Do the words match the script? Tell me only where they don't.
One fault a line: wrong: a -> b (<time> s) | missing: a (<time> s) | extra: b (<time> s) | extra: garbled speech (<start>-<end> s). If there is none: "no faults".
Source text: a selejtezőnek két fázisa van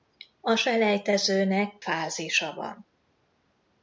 missing: két (1.8 s)